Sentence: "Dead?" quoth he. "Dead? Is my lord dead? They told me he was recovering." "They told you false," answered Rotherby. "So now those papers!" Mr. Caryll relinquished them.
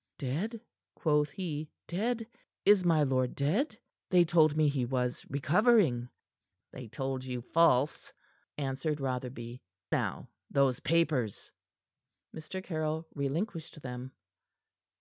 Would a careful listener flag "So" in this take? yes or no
yes